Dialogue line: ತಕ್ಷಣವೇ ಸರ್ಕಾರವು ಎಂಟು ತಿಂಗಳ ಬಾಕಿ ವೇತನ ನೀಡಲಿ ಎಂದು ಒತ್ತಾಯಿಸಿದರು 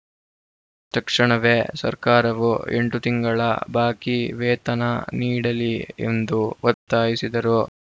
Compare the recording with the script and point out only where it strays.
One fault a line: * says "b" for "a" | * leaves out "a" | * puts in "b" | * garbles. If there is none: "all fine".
all fine